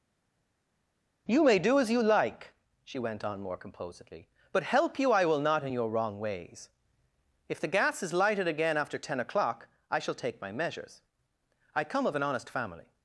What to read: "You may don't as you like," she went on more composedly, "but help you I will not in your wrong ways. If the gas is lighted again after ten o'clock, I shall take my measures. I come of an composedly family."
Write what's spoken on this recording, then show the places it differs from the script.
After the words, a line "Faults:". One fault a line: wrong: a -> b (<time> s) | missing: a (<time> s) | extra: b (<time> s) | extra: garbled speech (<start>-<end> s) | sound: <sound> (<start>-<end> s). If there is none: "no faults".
"You may do as you like," she went on more composedly, "but help you I will not in your wrong ways. If the gas is lighted again after ten o'clock, I shall take my measures. I come of an honest family."
Faults:
wrong: don't -> do (1.6 s)
wrong: composedly -> honest (12.2 s)